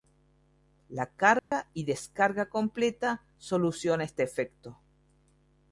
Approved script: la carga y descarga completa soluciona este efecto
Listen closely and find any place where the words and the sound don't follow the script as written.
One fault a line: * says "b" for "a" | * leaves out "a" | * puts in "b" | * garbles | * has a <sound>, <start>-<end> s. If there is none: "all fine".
* has a dropout, 1.4-1.5 s